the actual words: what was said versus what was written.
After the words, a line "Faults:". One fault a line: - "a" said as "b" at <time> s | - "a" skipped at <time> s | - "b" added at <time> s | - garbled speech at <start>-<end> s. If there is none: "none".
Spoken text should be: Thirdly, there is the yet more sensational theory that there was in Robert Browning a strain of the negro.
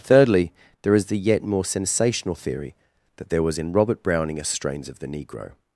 Thirdly, there is the yet more sensational theory that there was in Robert Browning a strains of the negro.
Faults:
- "strain" said as "strains" at 4.4 s